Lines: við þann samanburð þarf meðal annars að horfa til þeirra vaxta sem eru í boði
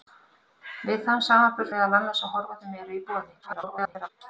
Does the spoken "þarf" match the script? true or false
false